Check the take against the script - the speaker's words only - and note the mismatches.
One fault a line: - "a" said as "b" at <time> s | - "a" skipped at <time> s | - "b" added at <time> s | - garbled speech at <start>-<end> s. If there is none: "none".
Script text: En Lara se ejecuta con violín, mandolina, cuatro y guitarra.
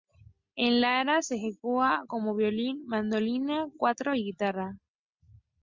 none